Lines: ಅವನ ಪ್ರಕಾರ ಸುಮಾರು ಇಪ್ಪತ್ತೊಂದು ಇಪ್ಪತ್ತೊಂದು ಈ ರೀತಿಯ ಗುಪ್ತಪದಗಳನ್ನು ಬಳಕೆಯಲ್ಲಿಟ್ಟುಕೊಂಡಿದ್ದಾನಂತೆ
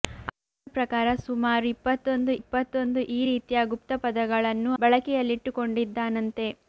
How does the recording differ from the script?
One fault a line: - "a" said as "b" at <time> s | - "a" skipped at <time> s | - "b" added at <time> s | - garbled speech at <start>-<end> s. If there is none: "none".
none